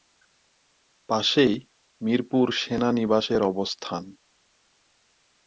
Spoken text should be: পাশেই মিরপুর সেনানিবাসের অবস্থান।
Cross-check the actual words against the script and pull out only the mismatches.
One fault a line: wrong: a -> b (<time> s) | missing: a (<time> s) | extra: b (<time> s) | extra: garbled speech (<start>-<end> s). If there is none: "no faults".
no faults